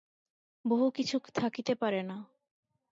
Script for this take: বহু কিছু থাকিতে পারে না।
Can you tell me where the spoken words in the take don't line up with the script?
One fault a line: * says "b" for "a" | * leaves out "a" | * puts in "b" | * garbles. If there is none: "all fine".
all fine